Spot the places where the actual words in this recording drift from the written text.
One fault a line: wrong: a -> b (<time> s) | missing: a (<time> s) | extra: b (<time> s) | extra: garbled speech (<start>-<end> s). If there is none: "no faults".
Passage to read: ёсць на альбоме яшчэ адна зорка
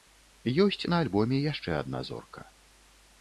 no faults